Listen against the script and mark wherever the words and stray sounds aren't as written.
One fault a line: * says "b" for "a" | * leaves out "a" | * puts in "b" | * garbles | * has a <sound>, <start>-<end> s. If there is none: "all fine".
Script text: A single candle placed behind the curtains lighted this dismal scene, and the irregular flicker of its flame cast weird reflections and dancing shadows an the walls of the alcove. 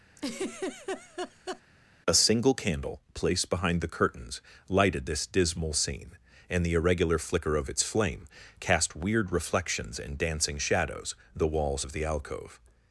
* has a laugh, 0.2-1.6 s
* leaves out "an"